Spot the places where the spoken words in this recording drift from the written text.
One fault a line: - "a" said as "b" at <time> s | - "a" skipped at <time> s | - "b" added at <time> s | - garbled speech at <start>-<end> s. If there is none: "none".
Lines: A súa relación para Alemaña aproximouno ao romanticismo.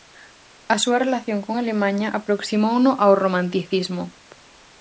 - "para" said as "con" at 1.4 s